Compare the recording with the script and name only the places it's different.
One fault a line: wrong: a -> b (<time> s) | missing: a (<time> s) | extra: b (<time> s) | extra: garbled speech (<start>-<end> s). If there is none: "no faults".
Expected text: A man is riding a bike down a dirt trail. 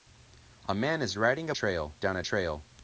wrong: bike -> trail (1.5 s)
missing: dirt (2.2 s)